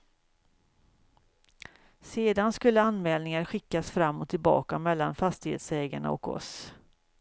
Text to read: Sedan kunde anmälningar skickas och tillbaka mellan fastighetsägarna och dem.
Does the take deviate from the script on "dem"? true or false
true